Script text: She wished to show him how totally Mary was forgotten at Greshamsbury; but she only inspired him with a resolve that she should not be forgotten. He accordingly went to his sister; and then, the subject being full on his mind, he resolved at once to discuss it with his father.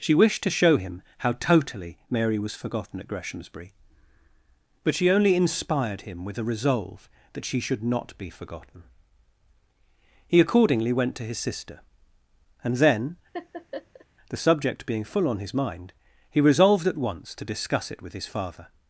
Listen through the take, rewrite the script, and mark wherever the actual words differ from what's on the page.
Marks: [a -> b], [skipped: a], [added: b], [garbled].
She wished to show him how totally Mary was forgotten at Greshamsbury; but she only inspired him with a resolve that she should not be forgotten. He accordingly went to his sister; and then, the subject being full on his mind, he resolved at once to discuss it with his father.